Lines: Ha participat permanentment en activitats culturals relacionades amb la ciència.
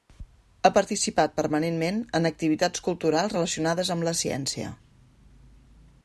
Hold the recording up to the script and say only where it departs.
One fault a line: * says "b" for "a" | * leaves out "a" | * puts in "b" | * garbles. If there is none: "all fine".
all fine